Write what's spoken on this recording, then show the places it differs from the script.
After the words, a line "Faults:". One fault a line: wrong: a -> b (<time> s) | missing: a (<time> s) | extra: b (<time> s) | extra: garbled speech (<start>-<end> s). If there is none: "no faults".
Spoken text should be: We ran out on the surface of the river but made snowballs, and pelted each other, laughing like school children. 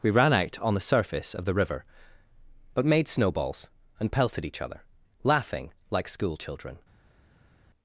We ran out on the surface of the river but made snowballs, and pelted each other, laughing like school children.
Faults:
no faults